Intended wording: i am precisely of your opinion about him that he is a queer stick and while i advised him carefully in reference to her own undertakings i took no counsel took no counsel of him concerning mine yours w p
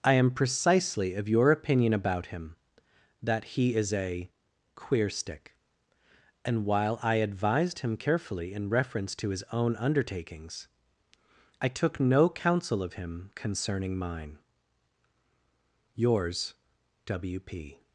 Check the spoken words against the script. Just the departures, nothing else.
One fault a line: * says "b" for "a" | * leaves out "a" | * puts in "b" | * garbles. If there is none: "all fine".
* says "his" for "her"
* leaves out "took no counsel"